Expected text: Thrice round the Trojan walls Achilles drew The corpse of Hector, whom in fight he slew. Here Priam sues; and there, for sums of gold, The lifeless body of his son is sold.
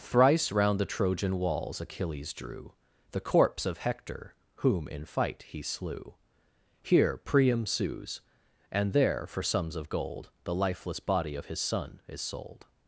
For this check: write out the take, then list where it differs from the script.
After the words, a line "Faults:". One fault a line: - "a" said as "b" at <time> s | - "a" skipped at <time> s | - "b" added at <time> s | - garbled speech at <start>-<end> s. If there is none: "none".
Thrice round the Trojan walls Achilles drew The corpse of Hector, whom in fight he slew. Here Priam sues; and there, for sums of gold, The lifeless body of his son is sold.
Faults:
none